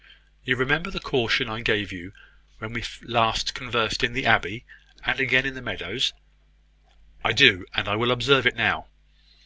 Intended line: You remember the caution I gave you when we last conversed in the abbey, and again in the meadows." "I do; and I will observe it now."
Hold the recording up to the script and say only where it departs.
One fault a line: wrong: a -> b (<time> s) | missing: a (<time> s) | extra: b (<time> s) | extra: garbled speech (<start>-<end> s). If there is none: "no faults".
no faults